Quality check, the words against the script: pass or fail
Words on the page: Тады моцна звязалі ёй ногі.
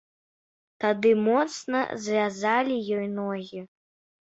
pass